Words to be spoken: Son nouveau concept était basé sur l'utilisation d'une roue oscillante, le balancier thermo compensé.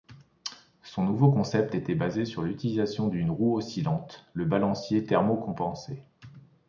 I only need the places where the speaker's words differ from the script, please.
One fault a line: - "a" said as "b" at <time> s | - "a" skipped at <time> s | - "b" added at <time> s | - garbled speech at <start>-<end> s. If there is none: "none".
none